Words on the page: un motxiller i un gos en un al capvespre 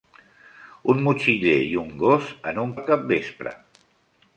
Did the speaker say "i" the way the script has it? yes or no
yes